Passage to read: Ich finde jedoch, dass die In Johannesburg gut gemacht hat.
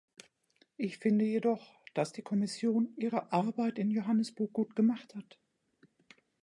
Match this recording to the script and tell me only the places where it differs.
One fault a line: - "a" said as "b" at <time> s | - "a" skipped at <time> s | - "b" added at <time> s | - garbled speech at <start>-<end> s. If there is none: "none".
- "Kommission ihre Arbeit" added at 2.2 s